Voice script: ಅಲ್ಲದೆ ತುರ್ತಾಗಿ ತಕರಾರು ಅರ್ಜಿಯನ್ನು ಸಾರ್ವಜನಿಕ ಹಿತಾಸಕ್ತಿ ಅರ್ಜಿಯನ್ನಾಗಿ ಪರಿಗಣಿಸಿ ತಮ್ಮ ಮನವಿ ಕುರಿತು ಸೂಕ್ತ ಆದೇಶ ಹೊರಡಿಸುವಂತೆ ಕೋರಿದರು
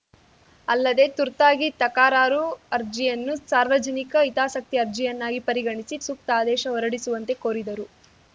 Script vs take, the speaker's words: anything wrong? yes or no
yes